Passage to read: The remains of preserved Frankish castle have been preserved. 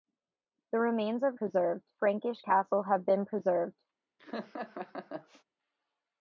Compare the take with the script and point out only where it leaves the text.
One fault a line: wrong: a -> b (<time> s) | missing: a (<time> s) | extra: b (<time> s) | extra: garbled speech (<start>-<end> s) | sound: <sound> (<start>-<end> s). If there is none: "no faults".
sound: laugh (4.2-5.4 s)